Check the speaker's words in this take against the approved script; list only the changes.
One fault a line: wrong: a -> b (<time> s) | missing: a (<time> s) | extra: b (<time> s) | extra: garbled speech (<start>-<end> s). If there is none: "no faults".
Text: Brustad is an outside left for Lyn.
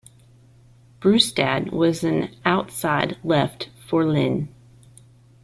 wrong: is -> was (1.7 s)